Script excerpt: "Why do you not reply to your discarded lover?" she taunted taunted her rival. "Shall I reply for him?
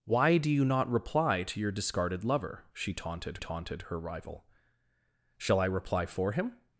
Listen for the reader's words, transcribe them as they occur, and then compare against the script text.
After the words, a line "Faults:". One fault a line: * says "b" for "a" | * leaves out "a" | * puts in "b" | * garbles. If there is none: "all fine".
"Why do you not reply to your discarded lover?" she taunted taunted her rival. "Shall I reply for him?
Faults:
all fine